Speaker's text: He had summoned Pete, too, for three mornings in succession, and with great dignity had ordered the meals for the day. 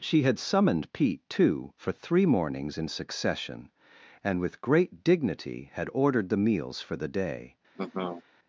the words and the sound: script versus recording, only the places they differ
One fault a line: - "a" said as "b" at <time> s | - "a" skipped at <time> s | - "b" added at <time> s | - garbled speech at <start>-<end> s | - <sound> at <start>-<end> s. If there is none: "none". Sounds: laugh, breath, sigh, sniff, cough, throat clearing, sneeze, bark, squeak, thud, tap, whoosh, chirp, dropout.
- "He" said as "She" at 0.0 s
- laugh at 7.7-8.2 s